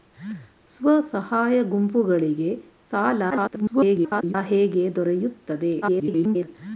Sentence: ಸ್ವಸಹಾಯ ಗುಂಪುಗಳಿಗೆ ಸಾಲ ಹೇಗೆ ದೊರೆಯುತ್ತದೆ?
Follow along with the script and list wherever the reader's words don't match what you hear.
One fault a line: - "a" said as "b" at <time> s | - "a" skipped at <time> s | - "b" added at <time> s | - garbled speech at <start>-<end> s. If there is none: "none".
- garbled speech at 3.3-4.3 s
- garbled speech at 5.8-6.5 s